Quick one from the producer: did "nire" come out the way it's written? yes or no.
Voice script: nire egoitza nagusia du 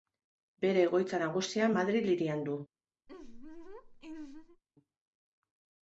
no